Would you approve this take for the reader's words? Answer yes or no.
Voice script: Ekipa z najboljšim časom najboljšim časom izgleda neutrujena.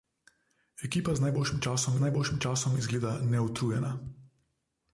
yes